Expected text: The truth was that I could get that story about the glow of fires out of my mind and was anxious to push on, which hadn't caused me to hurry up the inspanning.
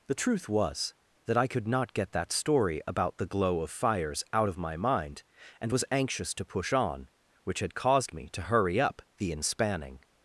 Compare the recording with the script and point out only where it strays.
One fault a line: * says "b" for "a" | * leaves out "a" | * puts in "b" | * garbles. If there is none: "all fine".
* puts in "not"
* says "had" for "hadn't"